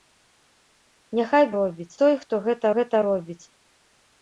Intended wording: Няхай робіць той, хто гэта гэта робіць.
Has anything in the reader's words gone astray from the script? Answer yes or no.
no